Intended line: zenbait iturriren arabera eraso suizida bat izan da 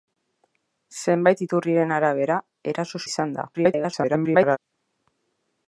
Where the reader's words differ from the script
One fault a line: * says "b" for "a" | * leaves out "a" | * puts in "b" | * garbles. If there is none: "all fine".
* leaves out "suizida bat"
* garbles